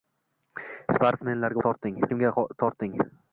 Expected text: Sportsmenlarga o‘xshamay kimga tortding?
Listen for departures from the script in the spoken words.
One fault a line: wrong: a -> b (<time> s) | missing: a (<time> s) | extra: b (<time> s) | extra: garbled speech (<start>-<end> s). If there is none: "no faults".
wrong: o‘xshamay -> tortding (1.7 s)